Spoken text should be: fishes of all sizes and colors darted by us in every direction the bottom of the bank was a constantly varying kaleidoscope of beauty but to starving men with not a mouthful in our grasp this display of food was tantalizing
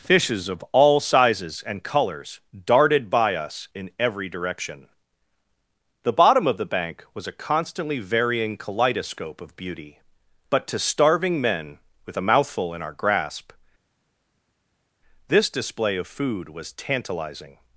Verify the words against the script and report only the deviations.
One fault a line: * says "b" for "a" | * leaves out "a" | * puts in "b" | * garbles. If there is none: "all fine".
* leaves out "not"